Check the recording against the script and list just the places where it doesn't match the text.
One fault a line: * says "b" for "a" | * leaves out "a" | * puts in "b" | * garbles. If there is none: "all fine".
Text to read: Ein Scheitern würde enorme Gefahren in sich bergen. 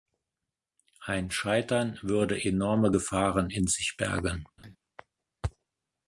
all fine